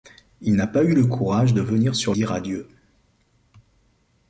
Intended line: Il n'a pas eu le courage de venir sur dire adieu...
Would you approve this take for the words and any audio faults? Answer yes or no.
yes